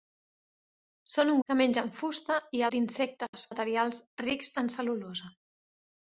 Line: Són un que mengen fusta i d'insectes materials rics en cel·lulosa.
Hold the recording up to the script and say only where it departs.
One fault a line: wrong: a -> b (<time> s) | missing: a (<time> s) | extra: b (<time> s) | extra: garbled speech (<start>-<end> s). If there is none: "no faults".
no faults